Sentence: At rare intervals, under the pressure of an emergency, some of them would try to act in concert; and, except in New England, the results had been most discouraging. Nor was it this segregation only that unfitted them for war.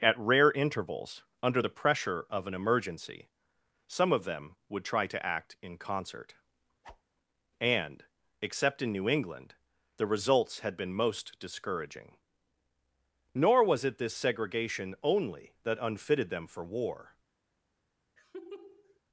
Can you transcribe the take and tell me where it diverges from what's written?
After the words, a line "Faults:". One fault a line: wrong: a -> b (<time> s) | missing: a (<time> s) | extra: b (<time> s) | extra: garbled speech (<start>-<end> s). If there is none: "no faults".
At rare intervals, under the pressure of an emergency, some of them would try to act in concert; and, except in New England, the results had been most discouraging. Nor was it this segregation only that unfitted them for war.
Faults:
no faults